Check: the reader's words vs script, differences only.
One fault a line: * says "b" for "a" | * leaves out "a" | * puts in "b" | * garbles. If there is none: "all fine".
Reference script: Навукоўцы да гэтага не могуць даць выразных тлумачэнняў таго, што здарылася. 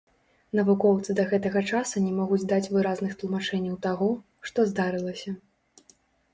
* puts in "часу"